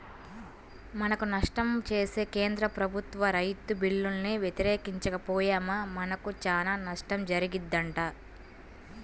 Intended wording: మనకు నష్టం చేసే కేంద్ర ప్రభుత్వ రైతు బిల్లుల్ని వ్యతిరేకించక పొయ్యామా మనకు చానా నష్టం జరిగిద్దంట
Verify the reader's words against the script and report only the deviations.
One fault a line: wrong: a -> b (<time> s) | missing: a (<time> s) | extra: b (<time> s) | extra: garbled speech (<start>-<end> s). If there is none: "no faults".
no faults